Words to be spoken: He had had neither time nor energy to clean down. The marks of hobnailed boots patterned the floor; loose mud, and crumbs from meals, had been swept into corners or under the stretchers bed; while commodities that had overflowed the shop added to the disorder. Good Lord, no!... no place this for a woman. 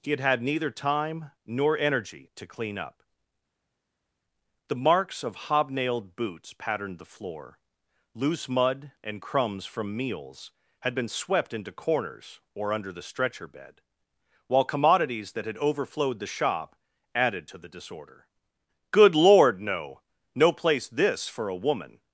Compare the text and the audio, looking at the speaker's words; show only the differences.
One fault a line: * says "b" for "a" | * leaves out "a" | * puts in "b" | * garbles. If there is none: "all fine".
* says "up" for "down"
* says "stretcher" for "stretchers"